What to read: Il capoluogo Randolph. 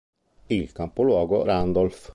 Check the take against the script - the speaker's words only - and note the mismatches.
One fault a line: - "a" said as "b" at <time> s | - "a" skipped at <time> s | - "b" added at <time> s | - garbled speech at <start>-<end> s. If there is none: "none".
none